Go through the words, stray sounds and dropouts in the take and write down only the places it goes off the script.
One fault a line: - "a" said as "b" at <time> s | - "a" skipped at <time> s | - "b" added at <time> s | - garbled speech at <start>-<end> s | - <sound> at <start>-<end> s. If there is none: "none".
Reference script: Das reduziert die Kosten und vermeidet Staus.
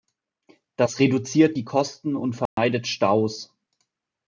- dropout at 2.5-2.6 s